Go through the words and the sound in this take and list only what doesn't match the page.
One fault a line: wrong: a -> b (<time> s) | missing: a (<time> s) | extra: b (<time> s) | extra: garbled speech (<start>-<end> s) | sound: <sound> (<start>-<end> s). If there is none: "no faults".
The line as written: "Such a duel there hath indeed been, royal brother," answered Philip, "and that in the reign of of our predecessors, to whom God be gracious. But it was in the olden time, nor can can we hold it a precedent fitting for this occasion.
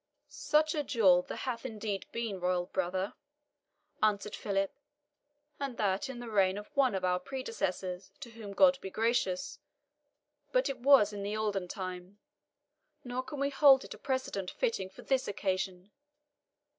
extra: one (6.8 s)
missing: can (13.4 s)